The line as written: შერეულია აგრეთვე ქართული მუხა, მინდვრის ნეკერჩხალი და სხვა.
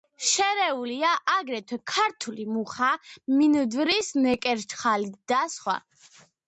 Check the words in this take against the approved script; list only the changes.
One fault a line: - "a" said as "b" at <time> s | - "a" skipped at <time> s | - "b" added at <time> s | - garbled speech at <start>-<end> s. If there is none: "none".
none